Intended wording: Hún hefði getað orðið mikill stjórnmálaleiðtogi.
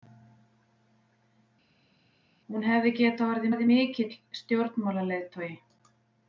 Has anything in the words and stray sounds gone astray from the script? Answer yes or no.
yes